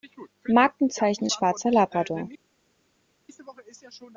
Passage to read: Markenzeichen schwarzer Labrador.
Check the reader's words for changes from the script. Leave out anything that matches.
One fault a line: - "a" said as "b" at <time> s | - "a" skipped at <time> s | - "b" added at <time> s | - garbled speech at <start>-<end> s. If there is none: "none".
none